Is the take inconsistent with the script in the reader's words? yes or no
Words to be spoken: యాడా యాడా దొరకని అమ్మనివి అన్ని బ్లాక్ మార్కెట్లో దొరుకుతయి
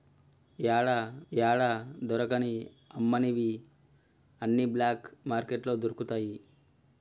no